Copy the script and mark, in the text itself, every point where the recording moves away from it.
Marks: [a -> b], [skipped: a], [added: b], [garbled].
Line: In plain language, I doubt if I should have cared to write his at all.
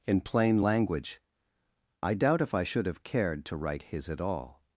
In plain language, I doubt if I should have cared to write his at all.